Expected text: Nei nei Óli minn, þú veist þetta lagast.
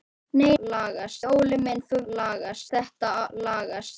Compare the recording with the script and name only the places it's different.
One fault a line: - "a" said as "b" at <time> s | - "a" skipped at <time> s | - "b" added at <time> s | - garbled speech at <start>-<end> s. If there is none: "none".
- "nei" said as "lagast" at 0.6 s
- "veist" said as "lagast" at 2.0 s